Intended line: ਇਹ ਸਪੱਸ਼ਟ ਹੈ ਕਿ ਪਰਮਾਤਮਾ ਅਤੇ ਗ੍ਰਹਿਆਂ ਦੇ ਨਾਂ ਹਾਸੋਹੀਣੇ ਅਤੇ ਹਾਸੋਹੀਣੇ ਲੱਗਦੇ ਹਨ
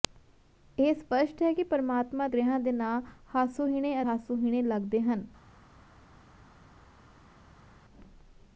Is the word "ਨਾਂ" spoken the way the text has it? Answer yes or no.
yes